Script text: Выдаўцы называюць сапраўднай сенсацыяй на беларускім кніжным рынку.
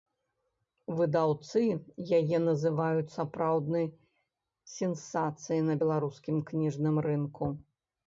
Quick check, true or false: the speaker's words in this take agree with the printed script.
false